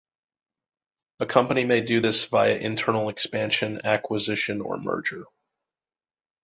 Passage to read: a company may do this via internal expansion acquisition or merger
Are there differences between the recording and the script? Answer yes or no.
no